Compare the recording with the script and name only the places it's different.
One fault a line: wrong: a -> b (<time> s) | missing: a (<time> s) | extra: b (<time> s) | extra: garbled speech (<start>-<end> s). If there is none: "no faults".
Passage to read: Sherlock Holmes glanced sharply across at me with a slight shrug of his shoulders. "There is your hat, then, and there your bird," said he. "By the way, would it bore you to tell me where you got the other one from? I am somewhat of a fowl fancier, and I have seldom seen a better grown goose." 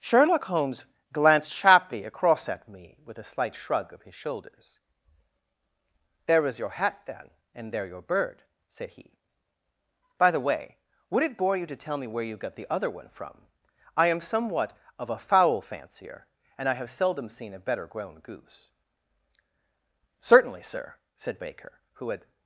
extra: Certainly sir said Baker who had (20.2 s)